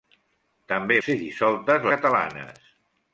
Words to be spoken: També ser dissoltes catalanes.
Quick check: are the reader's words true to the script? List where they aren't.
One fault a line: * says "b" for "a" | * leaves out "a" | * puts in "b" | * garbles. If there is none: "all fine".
all fine